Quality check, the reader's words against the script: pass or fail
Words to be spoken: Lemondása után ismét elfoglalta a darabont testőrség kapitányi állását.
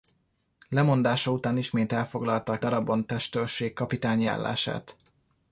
pass